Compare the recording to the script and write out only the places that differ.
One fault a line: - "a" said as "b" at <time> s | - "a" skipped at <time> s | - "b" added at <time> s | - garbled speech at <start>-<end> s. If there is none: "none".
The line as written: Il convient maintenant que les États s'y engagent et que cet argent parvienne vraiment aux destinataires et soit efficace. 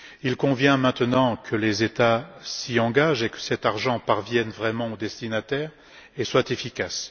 none